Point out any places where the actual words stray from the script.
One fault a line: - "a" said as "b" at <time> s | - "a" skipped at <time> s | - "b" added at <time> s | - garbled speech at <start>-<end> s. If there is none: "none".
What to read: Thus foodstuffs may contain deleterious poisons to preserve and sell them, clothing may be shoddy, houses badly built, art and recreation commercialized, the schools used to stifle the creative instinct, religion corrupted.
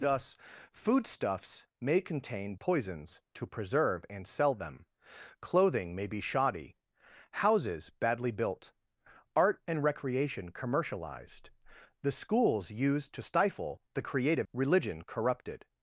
- "deleterious" skipped at 2.5 s
- "instinct" skipped at 14.5 s